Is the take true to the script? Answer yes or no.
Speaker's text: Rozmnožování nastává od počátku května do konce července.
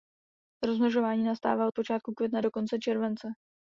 yes